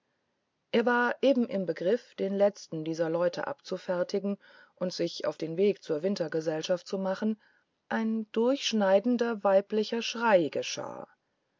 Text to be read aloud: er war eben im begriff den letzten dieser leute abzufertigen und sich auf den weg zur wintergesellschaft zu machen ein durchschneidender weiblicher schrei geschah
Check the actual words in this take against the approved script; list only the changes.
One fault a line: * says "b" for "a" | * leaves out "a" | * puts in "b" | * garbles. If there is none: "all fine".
all fine